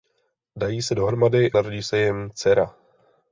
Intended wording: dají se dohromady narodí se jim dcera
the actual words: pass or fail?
pass